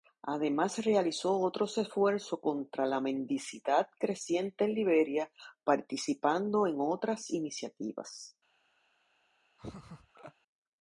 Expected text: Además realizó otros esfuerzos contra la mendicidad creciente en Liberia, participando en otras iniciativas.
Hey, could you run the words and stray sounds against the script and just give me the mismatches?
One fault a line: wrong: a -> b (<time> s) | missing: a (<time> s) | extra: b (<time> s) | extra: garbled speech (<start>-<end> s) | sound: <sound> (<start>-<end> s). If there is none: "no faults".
sound: laugh (9.6-10.3 s)